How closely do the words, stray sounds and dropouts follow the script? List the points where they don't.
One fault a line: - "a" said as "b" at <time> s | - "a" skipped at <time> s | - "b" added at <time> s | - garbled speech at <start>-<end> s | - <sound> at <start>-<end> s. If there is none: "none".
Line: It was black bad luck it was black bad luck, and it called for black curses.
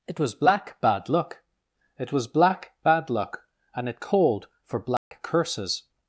- dropout at 5.0-5.1 s